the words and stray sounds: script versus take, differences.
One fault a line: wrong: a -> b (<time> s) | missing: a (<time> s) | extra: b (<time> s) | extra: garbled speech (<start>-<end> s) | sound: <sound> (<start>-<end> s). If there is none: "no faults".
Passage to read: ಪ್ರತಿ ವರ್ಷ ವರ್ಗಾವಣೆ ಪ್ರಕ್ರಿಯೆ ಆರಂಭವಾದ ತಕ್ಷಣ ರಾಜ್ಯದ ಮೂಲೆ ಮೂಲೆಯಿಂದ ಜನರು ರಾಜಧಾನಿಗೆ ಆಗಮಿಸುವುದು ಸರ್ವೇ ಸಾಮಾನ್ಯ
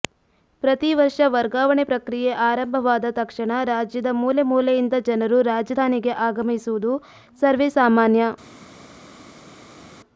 no faults